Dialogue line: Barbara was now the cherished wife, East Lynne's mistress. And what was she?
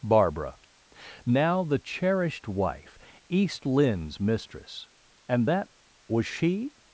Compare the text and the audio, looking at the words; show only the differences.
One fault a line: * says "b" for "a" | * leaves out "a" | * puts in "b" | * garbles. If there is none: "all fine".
* leaves out "was"
* says "that" for "what"